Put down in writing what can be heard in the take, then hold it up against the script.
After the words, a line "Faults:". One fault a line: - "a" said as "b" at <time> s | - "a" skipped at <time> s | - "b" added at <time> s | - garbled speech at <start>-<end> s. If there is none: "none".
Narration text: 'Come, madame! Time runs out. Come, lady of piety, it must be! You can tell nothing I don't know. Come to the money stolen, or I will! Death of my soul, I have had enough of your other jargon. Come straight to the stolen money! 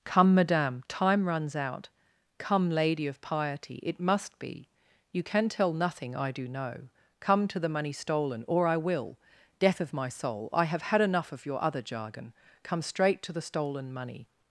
'Come, madame! Time runs out. Come, lady of piety, it must be! You can tell nothing I do know. Come to the money stolen, or I will! Death of my soul, I have had enough of your other jargon. Come straight to the stolen money!
Faults:
- "don't" said as "do" at 6.3 s